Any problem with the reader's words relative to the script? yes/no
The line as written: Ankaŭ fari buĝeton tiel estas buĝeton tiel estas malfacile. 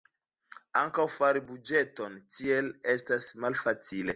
yes